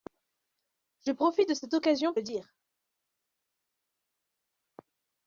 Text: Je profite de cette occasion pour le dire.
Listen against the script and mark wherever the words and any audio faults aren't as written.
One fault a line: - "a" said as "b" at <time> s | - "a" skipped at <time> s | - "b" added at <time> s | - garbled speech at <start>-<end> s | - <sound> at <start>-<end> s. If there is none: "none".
- "pour" skipped at 2.1 s